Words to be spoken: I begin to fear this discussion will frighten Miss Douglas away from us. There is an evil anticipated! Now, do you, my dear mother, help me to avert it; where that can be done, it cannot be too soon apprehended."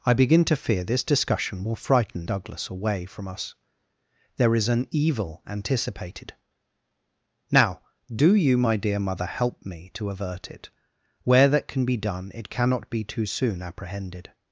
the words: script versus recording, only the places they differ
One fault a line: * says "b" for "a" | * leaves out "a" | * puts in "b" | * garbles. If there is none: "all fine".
* leaves out "Miss"